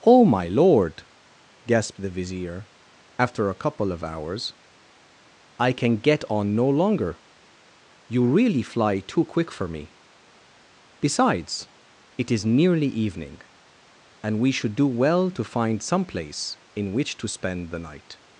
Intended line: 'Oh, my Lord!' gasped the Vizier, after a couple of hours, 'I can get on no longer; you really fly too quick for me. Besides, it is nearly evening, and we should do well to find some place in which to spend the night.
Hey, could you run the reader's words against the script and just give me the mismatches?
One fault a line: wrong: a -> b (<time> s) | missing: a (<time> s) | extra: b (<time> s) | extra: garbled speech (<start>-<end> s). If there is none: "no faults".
no faults